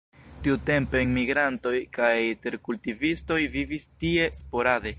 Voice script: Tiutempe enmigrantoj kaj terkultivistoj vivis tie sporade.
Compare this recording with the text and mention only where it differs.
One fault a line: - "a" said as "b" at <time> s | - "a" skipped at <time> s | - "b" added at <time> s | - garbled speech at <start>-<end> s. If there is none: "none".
none